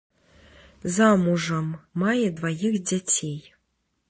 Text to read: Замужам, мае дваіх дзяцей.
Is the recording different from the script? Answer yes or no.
no